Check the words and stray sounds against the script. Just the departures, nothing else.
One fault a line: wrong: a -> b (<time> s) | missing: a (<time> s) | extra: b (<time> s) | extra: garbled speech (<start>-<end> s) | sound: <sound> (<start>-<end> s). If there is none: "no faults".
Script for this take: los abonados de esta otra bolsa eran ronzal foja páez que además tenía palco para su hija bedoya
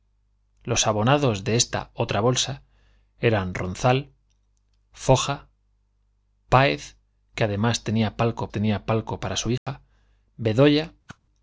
extra: tenía palco (8.5 s)
sound: dropout (9.6-9.7 s)
sound: whoosh (11.1-11.2 s)